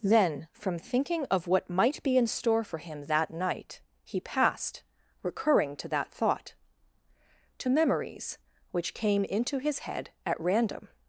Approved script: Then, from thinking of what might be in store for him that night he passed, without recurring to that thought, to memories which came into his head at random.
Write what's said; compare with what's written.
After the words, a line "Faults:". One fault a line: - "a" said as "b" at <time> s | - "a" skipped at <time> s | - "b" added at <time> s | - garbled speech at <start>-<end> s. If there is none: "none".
Then, from thinking of what might be in store for him that night he passed, recurring to that thought, to memories which came into his head at random.
Faults:
- "without" skipped at 4.8 s